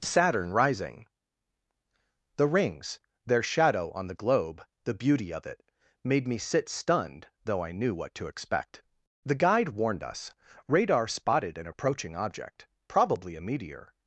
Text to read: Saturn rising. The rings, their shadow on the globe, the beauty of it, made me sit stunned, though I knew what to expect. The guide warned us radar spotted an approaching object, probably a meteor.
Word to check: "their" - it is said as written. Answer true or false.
true